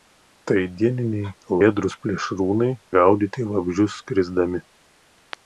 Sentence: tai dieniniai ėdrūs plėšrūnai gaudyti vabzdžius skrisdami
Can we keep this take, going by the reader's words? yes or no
yes